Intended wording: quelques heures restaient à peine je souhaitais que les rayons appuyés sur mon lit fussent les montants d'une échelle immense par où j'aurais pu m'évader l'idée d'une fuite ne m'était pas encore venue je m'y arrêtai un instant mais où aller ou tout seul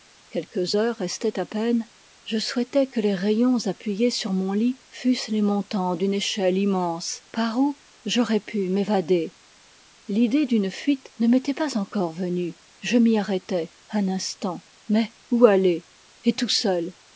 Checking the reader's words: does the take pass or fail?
fail